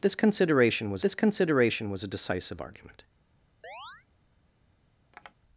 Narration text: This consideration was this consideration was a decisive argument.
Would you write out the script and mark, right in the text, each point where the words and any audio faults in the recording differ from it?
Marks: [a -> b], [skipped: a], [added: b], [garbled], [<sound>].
This consideration was this consideration was a decisive argument. [chirp] [tap]